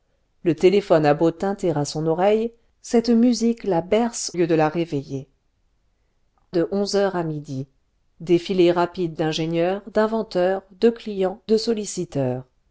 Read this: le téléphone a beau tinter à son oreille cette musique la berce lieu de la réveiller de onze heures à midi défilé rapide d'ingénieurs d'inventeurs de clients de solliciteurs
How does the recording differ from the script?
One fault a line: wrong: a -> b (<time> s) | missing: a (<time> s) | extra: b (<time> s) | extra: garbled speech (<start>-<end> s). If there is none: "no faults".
no faults